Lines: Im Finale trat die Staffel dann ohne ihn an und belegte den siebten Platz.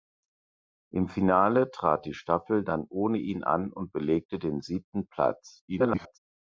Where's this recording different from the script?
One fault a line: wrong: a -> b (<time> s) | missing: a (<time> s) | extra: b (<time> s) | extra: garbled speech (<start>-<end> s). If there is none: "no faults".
extra: garbled speech (5.7-6.2 s)